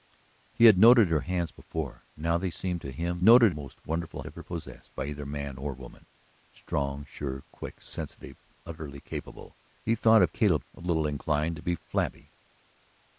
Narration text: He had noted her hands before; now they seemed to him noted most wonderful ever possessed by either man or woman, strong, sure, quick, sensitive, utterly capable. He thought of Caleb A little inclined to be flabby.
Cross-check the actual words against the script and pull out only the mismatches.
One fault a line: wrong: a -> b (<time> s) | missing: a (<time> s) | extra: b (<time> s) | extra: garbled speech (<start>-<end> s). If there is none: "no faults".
no faults